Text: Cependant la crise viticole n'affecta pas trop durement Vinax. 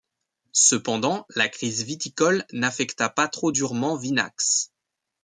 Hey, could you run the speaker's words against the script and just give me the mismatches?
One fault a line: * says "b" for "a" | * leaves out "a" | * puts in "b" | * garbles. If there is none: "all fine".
all fine